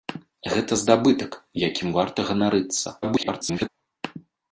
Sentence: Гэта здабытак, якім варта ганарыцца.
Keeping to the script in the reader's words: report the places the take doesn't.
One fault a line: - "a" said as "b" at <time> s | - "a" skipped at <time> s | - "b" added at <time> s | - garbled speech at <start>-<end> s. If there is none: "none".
- garbled speech at 3.0-3.7 s